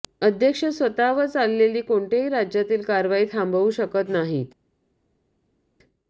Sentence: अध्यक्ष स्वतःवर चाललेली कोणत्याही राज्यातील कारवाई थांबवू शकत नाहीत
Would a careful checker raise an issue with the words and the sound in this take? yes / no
no